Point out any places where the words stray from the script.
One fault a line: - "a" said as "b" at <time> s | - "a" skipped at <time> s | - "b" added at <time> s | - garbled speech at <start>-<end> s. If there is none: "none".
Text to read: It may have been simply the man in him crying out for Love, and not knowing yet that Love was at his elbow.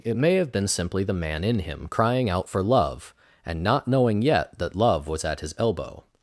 none